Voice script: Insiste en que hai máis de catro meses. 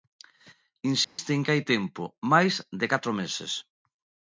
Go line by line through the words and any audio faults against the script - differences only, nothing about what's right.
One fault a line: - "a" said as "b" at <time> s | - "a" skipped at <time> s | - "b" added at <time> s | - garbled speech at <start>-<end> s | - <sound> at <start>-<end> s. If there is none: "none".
- dropout at 1.0-1.2 s
- "tempo" added at 1.7 s